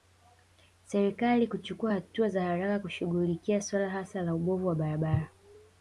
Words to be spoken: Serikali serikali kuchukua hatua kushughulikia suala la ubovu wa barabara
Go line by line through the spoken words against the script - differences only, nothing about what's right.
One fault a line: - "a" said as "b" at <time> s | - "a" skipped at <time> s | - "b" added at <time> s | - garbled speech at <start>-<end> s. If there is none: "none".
- "serikali" skipped at 1.5 s
- "za haraka" added at 2.3 s
- "hasa" added at 3.9 s